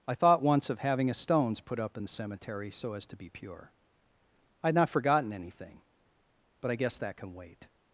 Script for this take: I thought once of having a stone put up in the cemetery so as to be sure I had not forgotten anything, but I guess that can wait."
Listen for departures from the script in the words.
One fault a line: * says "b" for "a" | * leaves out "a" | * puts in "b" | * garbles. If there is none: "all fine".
* says "stones" for "stone"
* says "pure" for "sure"